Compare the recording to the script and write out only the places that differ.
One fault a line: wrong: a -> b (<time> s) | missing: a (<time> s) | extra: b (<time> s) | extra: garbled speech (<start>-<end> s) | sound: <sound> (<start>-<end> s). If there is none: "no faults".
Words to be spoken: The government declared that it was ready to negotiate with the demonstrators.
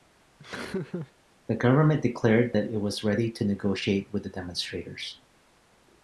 sound: laugh (0.4-1.1 s)